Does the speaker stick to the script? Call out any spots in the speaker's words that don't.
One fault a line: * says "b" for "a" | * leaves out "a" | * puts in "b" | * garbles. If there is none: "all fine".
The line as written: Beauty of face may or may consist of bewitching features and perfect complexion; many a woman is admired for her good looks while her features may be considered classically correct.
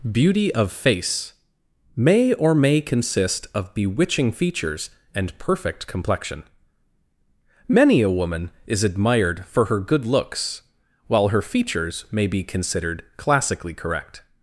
all fine